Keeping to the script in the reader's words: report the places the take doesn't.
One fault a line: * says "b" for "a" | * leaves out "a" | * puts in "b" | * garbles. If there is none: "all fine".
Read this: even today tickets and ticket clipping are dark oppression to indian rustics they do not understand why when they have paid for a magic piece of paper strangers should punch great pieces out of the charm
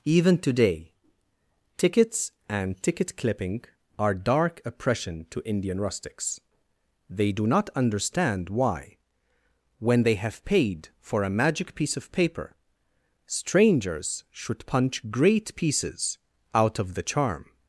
all fine